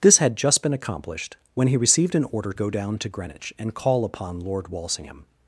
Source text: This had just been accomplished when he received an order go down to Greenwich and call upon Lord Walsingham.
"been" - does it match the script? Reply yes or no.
yes